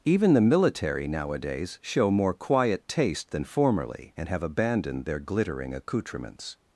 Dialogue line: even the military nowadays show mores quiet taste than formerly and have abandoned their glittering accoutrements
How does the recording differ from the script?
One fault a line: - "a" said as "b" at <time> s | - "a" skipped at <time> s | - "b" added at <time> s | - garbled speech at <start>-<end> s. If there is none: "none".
- "mores" said as "more" at 2.1 s